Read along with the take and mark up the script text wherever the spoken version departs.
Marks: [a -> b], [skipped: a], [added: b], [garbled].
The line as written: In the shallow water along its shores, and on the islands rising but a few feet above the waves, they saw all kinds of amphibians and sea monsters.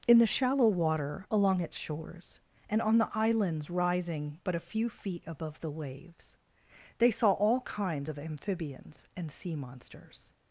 In the shallow water along its shores, and on the islands rising but a few feet above the waves, they saw all kinds of amphibians and sea monsters.